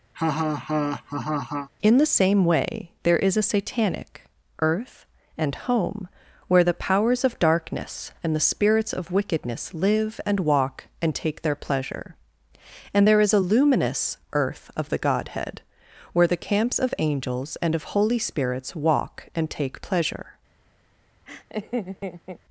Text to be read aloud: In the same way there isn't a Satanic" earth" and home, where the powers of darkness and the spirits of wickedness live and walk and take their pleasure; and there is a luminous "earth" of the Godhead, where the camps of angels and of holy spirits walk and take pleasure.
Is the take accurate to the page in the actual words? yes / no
no